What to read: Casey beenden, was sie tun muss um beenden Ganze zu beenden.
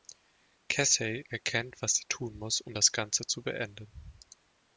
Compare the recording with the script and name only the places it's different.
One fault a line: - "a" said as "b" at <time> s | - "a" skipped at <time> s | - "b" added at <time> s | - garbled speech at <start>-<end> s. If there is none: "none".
- "beenden" said as "erkennt" at 1.3 s
- "beenden" said as "das" at 2.7 s